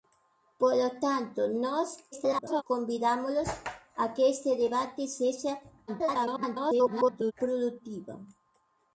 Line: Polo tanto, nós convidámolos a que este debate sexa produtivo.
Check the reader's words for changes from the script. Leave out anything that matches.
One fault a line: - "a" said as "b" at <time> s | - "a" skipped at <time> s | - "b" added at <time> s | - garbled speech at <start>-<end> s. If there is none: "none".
- garbled speech at 2.1-2.6 s
- garbled speech at 5.9-7.3 s